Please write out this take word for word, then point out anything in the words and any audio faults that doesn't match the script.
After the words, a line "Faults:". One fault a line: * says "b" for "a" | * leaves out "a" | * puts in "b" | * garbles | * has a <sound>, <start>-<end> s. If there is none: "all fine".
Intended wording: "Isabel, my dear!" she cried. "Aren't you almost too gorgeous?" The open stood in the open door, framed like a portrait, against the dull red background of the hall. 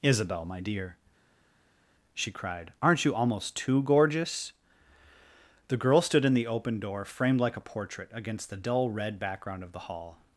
"Isabel, my dear!" she cried. "Aren't you almost too gorgeous?" The girl stood in the open door, framed like a portrait, against the dull red background of the hall.
Faults:
* says "girl" for "open"